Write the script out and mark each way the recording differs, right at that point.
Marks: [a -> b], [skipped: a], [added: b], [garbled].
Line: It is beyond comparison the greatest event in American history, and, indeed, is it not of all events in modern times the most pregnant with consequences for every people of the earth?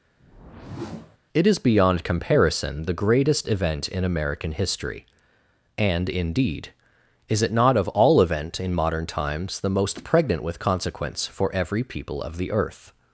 It is beyond comparison the greatest event in American history, and, indeed, is it not of all [events -> event] in modern times the most pregnant with [consequences -> consequence] for every people of the earth?